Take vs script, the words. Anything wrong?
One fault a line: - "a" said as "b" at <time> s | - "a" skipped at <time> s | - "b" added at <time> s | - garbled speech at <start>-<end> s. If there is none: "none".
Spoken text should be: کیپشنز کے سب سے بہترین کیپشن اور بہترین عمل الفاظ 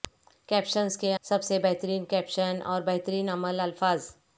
none